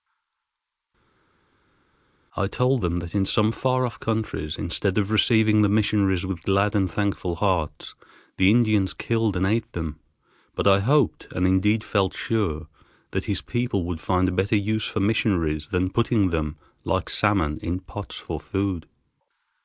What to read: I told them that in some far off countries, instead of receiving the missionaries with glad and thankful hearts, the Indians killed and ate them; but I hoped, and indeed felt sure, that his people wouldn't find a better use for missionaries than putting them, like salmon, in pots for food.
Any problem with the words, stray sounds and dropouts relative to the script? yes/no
yes